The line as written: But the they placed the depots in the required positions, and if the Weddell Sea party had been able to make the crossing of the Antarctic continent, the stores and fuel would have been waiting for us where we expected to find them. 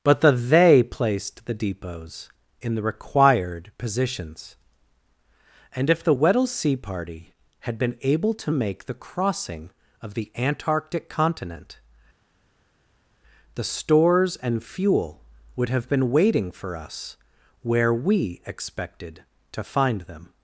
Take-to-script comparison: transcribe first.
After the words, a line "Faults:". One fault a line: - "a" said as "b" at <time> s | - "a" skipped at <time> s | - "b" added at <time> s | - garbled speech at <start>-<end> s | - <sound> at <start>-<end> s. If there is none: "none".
But the they placed the depots in the required positions, and if the Weddell Sea party had been able to make the crossing of the Antarctic continent, the stores and fuel would have been waiting for us where we expected to find them.
Faults:
none